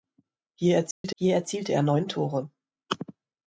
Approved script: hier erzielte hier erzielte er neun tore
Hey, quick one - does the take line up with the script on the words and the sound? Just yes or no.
no